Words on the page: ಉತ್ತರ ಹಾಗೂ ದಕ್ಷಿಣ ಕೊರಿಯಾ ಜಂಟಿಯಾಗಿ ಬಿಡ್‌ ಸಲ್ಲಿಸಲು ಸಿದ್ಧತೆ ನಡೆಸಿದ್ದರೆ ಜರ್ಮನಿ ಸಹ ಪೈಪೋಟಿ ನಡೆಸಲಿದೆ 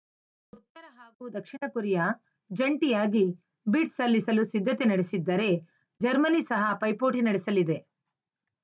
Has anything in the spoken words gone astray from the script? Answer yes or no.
no